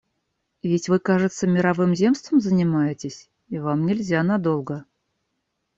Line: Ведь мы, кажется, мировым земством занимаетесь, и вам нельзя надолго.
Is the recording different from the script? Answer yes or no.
yes